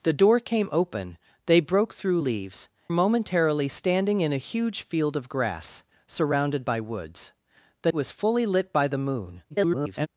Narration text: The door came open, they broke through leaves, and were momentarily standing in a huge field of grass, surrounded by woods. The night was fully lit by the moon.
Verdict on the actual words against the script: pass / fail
fail